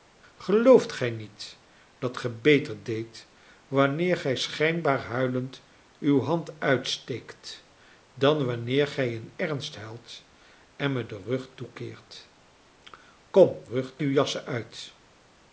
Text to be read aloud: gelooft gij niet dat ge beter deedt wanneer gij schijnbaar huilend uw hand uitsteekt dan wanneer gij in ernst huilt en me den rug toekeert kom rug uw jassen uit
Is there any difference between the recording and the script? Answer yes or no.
no